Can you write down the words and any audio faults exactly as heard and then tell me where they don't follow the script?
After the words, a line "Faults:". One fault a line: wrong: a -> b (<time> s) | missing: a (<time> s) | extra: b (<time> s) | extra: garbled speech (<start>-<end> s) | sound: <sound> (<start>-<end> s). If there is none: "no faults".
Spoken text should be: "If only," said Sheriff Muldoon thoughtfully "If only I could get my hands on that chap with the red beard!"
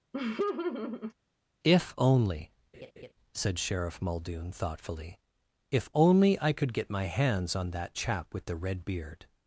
"If only," said Sheriff Muldoon thoughtfully "If only I could get my hands on that chap with the red beard!"
Faults:
sound: laugh (0.1-1.1 s)
sound: laugh (2.7-3.1 s)